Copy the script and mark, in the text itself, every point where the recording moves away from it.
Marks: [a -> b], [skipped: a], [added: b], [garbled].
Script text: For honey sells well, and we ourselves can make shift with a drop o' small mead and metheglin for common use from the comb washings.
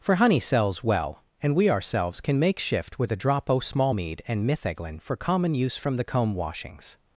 For honey sells well, and we ourselves can make shift with a drop o' small mead and metheglin for common use from the comb washings.